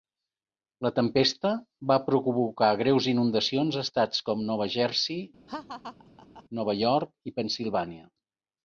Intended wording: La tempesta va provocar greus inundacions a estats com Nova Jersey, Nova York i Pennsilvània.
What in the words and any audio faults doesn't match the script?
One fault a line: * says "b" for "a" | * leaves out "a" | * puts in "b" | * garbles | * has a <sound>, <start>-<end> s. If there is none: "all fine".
* has a laugh, 5.5-6.4 s